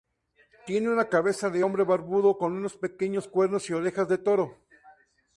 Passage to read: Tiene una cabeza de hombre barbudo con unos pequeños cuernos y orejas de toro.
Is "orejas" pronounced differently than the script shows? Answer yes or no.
no